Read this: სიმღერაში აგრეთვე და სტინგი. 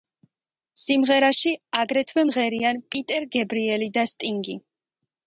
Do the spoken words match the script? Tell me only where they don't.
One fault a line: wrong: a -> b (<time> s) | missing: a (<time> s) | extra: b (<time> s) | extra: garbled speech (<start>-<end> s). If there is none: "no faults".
extra: მღერიან პიტერ გებრიელი (2.3 s)